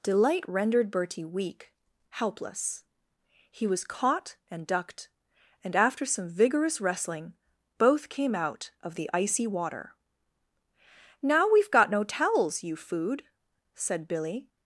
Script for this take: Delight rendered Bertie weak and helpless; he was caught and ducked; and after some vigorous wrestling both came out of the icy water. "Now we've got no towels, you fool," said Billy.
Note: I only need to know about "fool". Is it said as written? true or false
false